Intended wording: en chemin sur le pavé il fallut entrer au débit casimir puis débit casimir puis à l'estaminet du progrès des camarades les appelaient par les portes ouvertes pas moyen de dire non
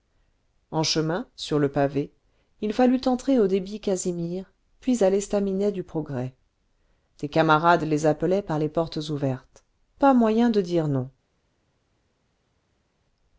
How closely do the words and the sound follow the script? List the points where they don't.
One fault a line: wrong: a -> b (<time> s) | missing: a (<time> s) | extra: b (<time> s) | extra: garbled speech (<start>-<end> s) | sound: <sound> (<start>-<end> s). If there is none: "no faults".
missing: débit casimir puis (5.0 s)